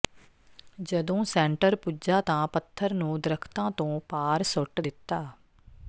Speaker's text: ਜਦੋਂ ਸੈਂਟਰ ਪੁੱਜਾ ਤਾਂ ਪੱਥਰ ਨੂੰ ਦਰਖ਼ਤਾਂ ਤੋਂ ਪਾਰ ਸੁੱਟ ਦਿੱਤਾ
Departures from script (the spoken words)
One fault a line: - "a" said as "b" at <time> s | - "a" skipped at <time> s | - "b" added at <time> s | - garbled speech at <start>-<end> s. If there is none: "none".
none